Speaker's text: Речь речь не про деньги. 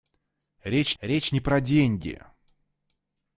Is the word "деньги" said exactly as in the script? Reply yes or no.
yes